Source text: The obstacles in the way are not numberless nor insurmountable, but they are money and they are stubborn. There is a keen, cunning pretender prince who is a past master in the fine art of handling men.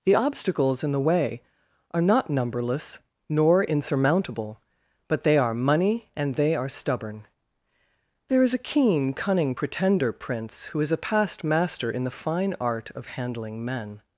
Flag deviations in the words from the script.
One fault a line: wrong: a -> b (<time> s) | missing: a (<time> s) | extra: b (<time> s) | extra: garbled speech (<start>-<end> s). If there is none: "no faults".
no faults